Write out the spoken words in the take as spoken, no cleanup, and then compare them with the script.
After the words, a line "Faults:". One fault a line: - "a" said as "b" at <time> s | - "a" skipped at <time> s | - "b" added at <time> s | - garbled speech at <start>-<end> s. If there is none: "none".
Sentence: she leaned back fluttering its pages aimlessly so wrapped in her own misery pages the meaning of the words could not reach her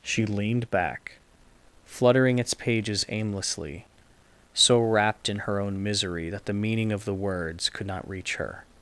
she leaned back fluttering its pages aimlessly so wrapped in her own misery that the meaning of the words could not reach her
Faults:
- "pages" said as "that" at 6.3 s